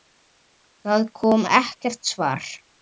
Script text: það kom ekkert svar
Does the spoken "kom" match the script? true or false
true